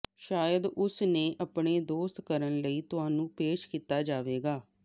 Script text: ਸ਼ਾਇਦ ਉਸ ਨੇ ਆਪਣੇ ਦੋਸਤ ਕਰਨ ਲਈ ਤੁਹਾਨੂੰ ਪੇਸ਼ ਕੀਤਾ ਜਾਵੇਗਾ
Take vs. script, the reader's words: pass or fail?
pass